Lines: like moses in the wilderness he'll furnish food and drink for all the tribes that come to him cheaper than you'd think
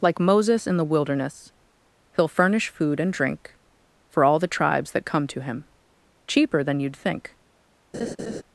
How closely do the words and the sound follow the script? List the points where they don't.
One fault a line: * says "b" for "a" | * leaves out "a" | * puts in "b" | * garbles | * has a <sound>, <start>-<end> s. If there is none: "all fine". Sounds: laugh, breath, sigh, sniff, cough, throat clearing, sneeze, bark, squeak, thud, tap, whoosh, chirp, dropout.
* has a laugh, 7.9-8.4 s